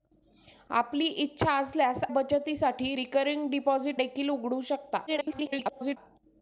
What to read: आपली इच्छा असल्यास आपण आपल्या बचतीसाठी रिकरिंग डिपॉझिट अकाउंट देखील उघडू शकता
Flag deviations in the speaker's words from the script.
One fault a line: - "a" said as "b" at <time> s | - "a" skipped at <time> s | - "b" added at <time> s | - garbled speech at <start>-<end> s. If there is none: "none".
- "आपण आपल्या" skipped at 2.0 s
- "अकाउंट" skipped at 4.0 s
- garbled speech at 5.1-6.0 s